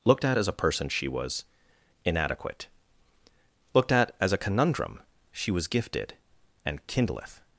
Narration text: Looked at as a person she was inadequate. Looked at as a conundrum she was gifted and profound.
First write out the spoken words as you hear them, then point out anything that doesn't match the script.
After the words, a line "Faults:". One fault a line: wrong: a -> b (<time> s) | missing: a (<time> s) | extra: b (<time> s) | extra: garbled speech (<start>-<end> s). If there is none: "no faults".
Looked at as a person she was inadequate. Looked at as a conundrum she was gifted and kindleth.
Faults:
wrong: profound -> kindleth (6.9 s)